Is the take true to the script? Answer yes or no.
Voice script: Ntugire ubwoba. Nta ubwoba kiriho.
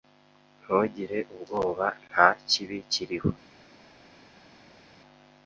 no